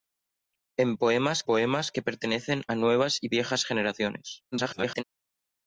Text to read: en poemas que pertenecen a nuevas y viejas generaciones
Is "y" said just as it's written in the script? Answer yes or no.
yes